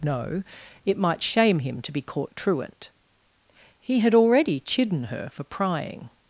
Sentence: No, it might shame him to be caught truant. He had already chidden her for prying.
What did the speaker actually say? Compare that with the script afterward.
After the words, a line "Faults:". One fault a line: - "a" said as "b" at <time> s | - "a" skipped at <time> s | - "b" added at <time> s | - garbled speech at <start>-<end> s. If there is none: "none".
No, it might shame him to be caught truant. He had already chidden her for prying.
Faults:
none